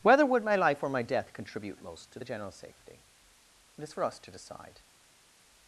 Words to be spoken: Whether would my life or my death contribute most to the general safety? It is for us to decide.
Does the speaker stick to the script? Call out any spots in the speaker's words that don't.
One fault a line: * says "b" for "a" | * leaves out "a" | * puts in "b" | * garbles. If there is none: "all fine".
all fine